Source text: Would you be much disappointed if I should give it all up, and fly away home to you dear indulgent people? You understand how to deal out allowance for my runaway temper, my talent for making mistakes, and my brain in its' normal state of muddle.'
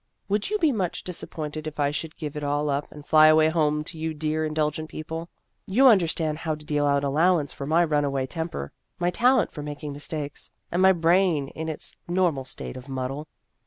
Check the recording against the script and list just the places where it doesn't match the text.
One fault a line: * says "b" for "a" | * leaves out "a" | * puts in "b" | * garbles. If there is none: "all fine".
all fine